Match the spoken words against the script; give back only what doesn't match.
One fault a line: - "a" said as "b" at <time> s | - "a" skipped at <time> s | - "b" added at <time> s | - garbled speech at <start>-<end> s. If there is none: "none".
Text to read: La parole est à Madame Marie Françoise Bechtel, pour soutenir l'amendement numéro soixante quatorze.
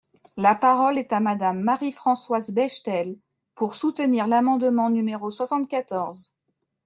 none